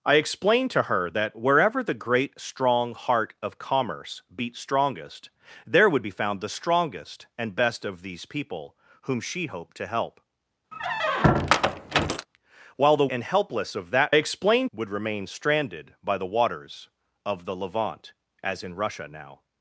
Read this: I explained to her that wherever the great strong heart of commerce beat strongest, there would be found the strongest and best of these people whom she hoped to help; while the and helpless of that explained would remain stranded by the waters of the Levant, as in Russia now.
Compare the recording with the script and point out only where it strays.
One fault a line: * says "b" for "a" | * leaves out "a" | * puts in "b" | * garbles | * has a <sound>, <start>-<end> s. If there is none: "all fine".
* has a squeak, 10.7-12.3 s